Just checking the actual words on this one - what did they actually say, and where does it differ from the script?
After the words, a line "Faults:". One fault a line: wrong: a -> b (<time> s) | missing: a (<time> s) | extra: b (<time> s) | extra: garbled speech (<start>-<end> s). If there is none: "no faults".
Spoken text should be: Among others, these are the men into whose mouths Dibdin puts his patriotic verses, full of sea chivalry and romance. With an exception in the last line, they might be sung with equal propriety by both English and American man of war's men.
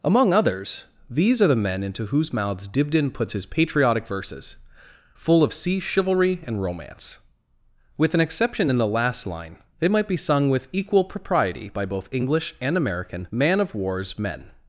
Among others, these are the men into whose mouths Dibdin puts his patriotic verses, full of sea chivalry and romance. With an exception in the last line, they might be sung with equal propriety by both English and American man of war's men.
Faults:
no faults